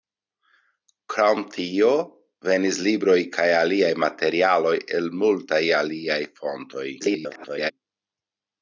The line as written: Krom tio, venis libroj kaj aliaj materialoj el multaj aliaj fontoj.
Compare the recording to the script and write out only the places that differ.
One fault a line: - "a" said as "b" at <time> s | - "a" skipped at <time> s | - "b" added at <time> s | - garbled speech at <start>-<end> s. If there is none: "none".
- garbled speech at 7.0-7.7 s